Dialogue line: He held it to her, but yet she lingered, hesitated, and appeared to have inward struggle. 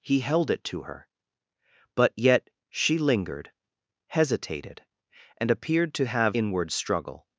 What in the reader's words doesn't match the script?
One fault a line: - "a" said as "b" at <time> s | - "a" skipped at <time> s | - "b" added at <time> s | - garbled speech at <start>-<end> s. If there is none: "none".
none